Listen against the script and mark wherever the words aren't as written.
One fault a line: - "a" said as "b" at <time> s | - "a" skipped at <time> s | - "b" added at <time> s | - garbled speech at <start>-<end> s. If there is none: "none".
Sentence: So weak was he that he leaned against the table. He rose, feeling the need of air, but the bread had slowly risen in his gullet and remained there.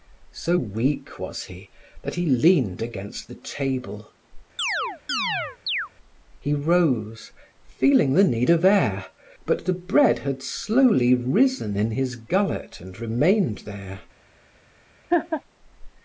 none